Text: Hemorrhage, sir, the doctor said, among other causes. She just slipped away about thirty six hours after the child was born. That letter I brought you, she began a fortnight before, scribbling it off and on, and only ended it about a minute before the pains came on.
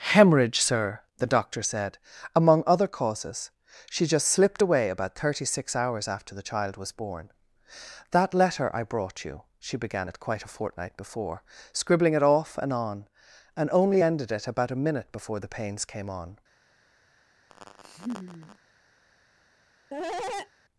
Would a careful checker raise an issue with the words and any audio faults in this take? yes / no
yes